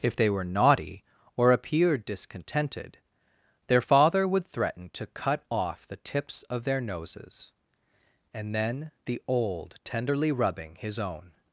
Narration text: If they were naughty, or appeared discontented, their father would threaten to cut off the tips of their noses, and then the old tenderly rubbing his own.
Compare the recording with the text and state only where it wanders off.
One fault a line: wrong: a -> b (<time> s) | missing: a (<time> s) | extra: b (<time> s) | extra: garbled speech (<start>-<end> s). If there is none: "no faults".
no faults